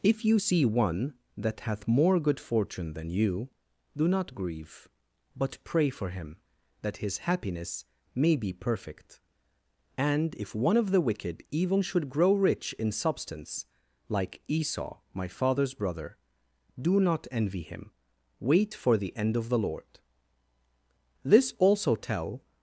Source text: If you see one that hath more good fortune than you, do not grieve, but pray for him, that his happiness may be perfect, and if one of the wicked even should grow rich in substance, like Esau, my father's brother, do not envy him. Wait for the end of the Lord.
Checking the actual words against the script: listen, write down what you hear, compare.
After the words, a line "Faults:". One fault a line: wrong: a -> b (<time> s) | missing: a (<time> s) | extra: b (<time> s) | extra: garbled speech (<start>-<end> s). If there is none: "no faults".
If you see one that hath more good fortune than you, do not grieve, but pray for him, that his happiness may be perfect, and if one of the wicked even should grow rich in substance, like Esau, my father's brother, do not envy him. Wait for the end of the Lord. "This also tell
Faults:
extra: This also tell (21.2 s)